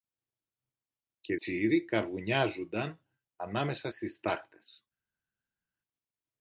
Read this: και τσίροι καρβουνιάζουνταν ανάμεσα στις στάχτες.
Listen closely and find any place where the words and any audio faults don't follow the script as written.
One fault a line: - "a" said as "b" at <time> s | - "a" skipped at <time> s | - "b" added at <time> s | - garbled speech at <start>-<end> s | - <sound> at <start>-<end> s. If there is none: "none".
none